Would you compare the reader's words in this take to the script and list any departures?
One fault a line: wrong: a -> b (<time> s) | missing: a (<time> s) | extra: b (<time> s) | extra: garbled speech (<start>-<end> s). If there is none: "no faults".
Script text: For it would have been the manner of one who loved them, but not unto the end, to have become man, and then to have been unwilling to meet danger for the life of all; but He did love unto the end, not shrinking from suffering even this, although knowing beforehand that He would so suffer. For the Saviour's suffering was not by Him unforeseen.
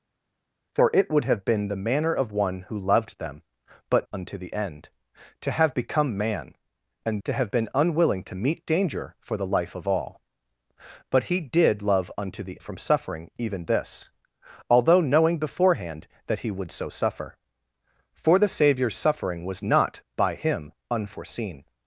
missing: not (4.1 s)
missing: then (7.2 s)
missing: end not shrinking (12.6 s)